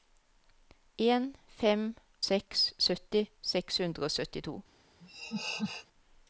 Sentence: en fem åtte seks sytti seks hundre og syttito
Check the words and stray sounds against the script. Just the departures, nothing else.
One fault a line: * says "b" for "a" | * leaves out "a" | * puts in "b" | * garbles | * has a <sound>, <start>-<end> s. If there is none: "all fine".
* leaves out "åtte"
* has a laugh, 5.0-5.9 s